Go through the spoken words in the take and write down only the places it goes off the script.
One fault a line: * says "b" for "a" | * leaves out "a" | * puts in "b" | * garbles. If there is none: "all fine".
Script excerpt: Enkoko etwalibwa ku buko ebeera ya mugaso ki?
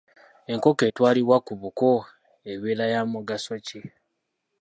all fine